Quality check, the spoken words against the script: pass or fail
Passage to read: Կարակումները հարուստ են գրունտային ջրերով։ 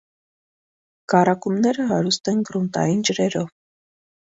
pass